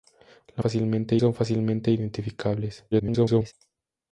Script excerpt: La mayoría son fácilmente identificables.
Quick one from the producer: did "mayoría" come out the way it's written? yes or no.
no